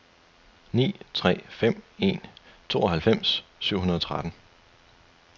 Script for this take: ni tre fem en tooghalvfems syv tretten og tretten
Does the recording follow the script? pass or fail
fail